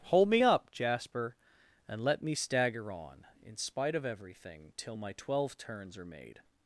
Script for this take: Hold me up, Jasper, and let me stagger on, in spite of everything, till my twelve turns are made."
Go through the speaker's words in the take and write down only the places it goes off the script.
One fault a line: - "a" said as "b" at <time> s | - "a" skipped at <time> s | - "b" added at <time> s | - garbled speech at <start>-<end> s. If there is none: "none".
none